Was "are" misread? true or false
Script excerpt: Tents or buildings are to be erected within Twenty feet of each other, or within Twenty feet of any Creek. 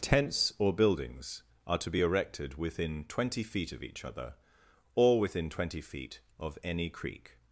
false